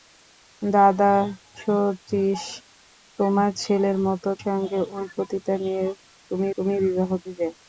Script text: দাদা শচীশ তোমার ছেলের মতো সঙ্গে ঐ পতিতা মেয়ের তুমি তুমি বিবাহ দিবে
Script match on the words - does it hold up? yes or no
yes